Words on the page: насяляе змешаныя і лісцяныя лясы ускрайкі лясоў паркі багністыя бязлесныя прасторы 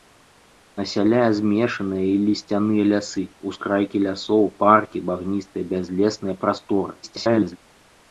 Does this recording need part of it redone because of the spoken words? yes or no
yes